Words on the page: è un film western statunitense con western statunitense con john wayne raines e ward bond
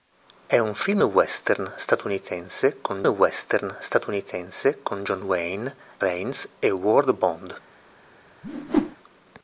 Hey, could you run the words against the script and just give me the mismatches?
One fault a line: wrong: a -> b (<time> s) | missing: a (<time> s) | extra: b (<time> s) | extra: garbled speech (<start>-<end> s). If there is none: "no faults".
no faults